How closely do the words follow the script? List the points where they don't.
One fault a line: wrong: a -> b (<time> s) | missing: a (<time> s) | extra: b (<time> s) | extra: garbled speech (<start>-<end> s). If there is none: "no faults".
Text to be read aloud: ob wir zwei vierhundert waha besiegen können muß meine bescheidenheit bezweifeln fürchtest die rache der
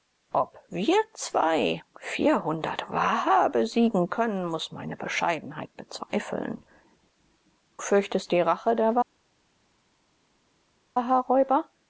no faults